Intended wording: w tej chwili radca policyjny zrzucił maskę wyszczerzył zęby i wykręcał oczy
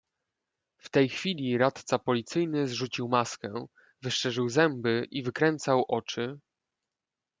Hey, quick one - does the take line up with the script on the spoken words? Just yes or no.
yes